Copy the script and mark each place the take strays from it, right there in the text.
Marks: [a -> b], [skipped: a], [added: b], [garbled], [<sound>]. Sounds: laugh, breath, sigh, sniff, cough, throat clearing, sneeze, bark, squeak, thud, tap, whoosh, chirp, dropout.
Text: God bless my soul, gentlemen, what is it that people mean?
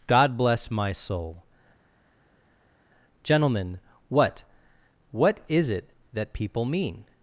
God bless my soul, gentlemen, what [added: what] is it that people mean?